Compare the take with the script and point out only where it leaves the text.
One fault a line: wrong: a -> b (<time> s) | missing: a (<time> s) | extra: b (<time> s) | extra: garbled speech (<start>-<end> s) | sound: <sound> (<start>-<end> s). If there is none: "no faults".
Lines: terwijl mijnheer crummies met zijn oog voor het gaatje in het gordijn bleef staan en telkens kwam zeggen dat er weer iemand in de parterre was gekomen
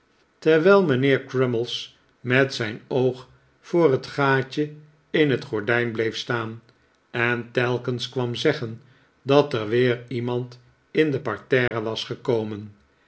sound: dropout (11.7-11.7 s)